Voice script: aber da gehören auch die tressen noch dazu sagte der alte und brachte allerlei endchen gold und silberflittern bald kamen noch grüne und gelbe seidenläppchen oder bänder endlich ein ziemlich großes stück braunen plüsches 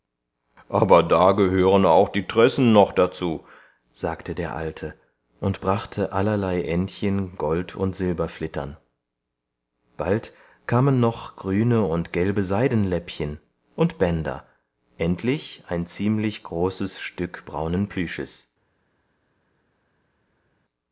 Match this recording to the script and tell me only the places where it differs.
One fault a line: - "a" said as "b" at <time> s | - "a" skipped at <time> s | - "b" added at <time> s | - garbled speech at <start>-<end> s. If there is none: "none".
- "oder" said as "und" at 13.7 s